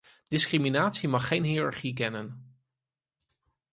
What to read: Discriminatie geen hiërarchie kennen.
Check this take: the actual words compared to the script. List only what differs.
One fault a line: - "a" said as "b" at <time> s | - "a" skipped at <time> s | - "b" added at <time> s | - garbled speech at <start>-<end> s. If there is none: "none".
- "mag" added at 1.1 s